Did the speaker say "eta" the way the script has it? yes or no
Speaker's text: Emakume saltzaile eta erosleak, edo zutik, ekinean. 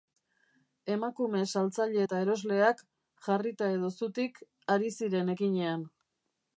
yes